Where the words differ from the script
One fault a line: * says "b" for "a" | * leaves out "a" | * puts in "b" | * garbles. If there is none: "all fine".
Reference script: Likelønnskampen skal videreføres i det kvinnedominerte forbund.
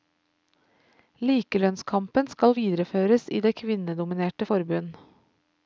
all fine